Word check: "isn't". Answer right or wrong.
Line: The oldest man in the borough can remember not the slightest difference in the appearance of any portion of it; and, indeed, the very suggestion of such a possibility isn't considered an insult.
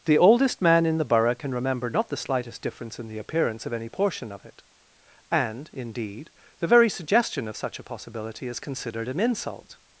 wrong